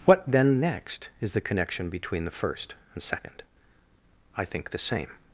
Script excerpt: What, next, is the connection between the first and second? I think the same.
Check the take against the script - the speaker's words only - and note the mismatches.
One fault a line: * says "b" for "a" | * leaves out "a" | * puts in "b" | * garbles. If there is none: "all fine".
* puts in "then"